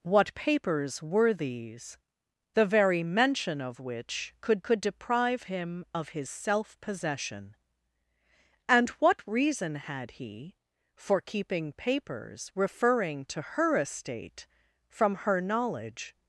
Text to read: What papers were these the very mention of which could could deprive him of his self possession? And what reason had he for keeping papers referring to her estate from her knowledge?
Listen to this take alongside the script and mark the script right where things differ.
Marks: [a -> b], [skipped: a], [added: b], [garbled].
What papers were these the very mention of which could could deprive him of his self possession? And what reason had he for keeping papers referring to her estate from her knowledge?